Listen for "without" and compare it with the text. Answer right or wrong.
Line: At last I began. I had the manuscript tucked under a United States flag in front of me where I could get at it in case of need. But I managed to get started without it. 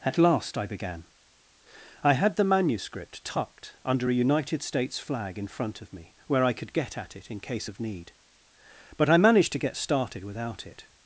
right